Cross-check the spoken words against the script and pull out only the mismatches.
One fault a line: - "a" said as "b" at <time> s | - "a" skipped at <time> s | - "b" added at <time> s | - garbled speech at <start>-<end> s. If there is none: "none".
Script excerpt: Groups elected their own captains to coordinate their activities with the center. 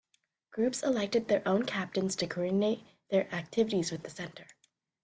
none